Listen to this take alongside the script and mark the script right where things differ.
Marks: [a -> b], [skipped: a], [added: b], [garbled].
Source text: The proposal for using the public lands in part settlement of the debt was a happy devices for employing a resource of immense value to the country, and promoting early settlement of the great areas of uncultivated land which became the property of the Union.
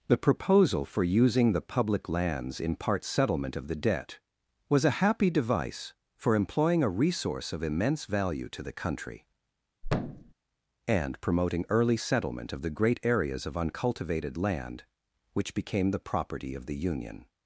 The proposal for using the public lands in part settlement of the debt was a happy [devices -> device] for employing a resource of immense value to the country, and promoting early settlement of the great areas of uncultivated land which became the property of the Union.